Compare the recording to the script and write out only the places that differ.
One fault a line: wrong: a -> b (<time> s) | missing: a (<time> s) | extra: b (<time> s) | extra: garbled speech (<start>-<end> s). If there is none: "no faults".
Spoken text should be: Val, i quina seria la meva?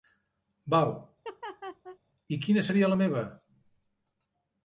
no faults